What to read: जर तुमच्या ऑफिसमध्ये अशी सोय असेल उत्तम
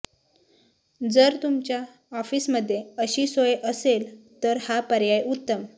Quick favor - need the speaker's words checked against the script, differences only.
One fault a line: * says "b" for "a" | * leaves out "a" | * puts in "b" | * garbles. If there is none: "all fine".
* puts in "तर हा पर्याय"